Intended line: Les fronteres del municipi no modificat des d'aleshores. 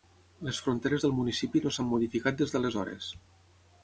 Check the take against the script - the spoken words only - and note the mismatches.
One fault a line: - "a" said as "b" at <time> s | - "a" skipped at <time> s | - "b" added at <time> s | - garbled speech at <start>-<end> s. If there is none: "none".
- "s'han" added at 1.7 s